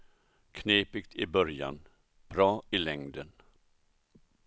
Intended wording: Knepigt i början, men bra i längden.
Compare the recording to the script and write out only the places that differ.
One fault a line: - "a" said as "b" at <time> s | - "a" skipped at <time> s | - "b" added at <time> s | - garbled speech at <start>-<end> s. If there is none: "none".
- "men" skipped at 1.8 s